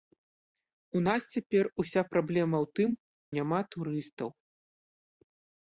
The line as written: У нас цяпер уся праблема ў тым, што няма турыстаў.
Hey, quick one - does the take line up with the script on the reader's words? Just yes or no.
no